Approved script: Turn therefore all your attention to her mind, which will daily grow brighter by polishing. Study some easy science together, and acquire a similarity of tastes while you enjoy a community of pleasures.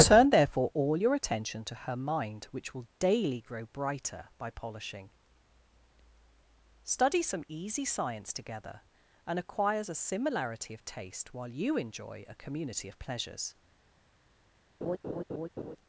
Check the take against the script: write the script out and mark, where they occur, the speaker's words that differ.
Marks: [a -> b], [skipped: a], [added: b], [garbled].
Turn therefore all your attention to her mind, which will daily grow brighter by polishing. Study some easy science together, and [acquire -> acquires] a similarity of [tastes -> taste] while you enjoy a community of pleasures.